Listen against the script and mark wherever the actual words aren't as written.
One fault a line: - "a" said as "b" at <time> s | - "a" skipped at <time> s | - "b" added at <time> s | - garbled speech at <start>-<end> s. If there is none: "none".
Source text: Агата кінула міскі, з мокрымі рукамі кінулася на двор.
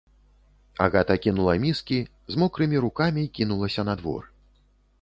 none